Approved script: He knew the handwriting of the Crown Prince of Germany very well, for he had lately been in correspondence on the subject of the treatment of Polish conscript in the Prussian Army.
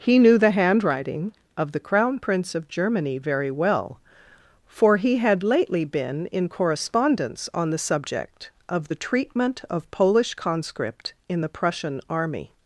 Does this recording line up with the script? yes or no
yes